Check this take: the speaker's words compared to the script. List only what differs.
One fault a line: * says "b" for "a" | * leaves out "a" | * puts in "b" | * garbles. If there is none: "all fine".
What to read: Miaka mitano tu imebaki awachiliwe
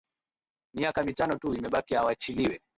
all fine